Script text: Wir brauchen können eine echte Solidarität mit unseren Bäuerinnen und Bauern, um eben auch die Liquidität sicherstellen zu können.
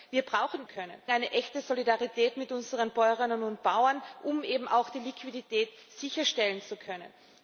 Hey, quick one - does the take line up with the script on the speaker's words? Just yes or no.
yes